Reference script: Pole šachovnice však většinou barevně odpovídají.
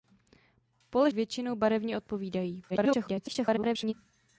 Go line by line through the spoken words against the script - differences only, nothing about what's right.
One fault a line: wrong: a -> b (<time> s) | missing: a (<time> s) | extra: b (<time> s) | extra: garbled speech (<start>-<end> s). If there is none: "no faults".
missing: šachovnice však (1.1 s)
extra: garbled speech (2.7-3.9 s)